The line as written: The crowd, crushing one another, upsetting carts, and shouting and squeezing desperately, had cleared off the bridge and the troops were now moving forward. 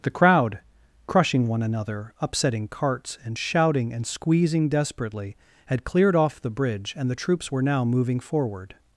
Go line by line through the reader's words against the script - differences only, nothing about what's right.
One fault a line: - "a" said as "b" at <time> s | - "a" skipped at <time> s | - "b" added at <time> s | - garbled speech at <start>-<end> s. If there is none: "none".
none